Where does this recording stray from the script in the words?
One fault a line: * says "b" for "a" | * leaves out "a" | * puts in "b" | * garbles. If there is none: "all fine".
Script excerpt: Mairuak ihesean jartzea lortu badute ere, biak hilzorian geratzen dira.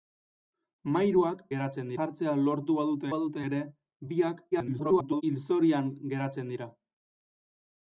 * says "geratzen" for "ihesean"
* puts in "badute"
* garbles